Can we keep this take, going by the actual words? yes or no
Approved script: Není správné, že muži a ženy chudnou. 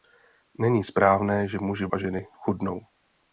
yes